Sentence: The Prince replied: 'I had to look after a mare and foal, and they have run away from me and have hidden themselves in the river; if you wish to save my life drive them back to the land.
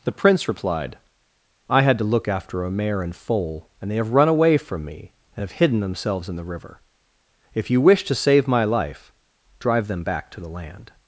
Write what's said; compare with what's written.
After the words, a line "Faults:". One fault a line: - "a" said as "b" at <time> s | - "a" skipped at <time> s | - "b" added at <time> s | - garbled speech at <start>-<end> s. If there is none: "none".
The Prince replied: 'I had to look after a mare and foal, and they have run away from me and have hidden themselves in the river; if you wish to save my life drive them back to the land.
Faults:
none